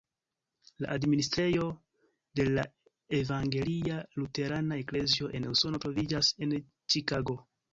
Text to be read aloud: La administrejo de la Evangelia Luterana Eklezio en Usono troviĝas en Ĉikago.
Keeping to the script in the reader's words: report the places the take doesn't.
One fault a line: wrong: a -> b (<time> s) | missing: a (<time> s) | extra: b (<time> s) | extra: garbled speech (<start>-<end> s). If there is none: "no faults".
no faults